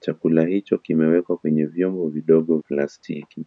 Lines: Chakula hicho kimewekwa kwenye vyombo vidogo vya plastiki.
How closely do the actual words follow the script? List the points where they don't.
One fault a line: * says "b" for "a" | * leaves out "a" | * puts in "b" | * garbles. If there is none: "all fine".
* leaves out "vya"